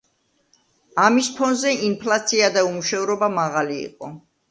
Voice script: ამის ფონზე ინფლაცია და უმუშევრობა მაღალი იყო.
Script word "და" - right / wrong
right